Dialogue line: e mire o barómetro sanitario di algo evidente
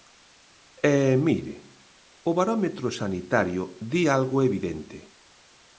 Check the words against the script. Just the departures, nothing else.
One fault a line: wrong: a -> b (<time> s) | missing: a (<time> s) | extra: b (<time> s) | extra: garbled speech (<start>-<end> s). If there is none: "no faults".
no faults